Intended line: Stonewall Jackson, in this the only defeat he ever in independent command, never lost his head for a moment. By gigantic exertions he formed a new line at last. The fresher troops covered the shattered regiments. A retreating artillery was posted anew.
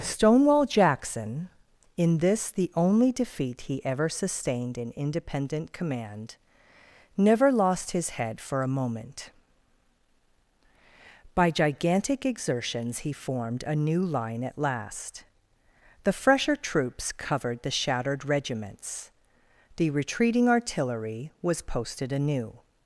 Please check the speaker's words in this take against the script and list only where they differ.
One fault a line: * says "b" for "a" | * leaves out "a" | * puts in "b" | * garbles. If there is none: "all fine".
* puts in "sustained"
* says "The" for "A"